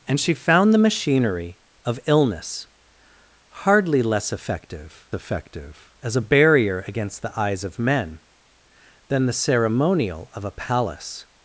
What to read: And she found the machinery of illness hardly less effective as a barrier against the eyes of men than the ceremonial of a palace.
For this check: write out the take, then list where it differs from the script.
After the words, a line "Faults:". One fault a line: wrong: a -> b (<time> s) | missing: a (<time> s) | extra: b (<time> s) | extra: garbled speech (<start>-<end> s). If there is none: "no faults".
And she found the machinery of illness hardly less effective effective as a barrier against the eyes of men than the ceremonial of a palace.
Faults:
extra: effective (5.1 s)